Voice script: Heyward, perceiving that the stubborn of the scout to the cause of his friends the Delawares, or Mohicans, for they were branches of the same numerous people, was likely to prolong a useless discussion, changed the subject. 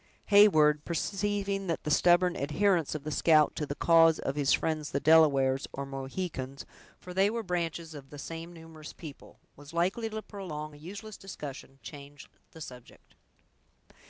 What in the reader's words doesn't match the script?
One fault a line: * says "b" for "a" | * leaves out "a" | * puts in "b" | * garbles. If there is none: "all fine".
* puts in "adherence"